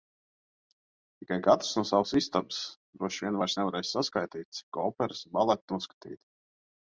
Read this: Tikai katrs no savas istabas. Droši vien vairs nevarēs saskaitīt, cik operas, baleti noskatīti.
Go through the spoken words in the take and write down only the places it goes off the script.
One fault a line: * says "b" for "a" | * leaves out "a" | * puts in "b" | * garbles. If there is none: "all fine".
all fine